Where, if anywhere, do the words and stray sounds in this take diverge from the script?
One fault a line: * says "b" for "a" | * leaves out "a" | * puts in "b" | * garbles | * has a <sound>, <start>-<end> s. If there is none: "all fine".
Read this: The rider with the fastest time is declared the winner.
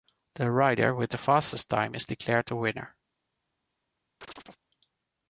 * has a chirp, 4.2-4.6 s